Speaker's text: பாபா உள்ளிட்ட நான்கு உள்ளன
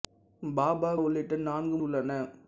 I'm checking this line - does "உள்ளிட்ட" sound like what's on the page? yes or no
yes